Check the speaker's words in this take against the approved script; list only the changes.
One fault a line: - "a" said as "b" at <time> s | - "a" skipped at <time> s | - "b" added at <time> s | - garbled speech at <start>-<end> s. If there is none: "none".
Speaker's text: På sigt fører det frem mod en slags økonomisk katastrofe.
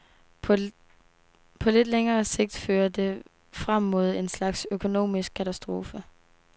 - "lidt længere" added at 1.7 s